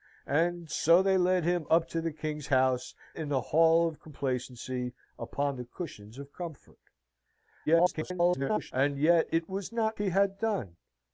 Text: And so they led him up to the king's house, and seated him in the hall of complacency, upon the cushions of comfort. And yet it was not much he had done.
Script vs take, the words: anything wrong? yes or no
yes